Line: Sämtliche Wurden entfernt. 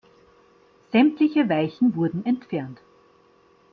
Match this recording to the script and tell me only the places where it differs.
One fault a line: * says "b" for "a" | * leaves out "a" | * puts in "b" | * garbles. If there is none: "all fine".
* puts in "Weichen"